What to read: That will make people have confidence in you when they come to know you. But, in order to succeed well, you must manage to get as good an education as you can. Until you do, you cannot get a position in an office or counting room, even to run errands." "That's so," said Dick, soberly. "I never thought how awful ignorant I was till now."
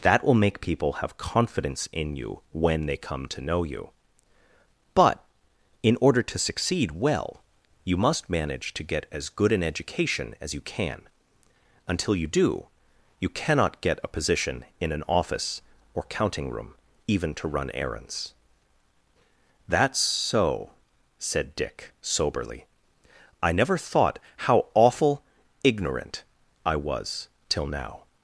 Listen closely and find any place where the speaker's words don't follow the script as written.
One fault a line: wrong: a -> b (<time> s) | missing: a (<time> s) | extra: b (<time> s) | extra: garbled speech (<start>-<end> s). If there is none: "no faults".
no faults